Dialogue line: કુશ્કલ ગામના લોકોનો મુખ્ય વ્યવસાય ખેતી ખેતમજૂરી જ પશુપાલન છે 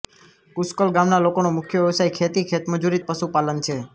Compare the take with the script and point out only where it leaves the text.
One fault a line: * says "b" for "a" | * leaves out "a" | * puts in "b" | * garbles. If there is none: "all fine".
all fine